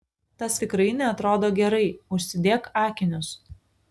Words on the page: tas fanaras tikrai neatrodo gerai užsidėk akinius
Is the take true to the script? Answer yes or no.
no